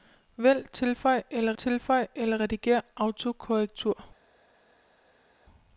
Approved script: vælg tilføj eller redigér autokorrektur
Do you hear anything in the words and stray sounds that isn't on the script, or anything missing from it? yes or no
yes